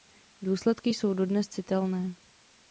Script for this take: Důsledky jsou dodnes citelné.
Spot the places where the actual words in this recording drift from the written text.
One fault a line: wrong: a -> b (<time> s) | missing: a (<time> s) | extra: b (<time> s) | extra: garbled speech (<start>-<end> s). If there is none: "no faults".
no faults